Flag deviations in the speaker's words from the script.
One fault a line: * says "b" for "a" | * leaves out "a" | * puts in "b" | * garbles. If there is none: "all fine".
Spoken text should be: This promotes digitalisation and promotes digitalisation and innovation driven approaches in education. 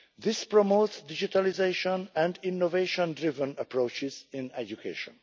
* leaves out "promotes digitalisation and"